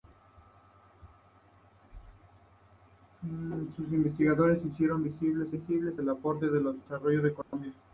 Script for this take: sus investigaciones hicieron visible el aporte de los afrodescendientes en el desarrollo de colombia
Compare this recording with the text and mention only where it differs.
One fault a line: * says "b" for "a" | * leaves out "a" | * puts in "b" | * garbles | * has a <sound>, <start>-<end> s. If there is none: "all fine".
* puts in "visible"
* leaves out "afrodescendientes en el"
* has a dropout, 7.4-7.5 s